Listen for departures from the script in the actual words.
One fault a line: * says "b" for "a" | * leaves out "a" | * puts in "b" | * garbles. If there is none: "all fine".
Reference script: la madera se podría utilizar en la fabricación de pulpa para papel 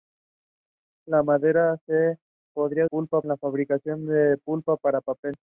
* says "pulpa" for "utilizar"